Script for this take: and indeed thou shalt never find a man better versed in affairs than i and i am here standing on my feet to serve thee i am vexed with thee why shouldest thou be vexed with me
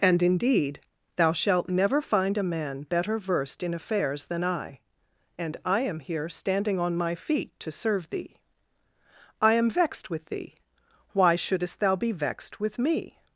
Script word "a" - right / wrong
right